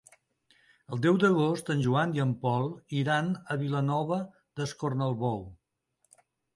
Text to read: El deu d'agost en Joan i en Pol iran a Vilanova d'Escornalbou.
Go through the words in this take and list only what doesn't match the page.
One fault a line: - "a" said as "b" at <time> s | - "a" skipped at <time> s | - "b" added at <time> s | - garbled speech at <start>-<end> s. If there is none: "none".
none